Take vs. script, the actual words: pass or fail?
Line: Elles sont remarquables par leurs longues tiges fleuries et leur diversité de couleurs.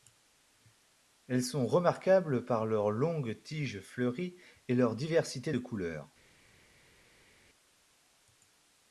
pass